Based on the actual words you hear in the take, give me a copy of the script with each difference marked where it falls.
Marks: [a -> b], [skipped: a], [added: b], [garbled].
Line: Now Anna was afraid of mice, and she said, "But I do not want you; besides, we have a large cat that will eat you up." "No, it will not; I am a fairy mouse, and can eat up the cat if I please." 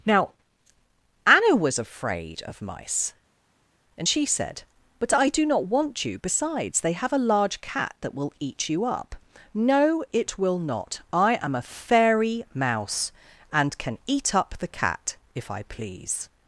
Now Anna was afraid of mice, and she said, "But I do not want you; besides, [we -> they] have a large cat that will eat you up." "No, it will not; I am a fairy mouse, and can eat up the cat if I please."